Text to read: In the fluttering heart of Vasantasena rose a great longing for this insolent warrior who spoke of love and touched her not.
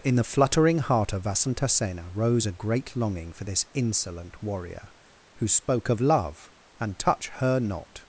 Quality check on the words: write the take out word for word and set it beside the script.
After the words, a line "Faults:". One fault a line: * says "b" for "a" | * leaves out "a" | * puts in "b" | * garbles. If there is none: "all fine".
In the fluttering heart of Vasantasena rose a great longing for this insolent warrior who spoke of love and touch her not.
Faults:
* says "touch" for "touched"